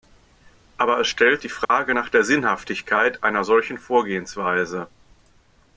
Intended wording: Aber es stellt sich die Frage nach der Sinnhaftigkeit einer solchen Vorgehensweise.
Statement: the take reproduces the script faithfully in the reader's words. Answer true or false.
false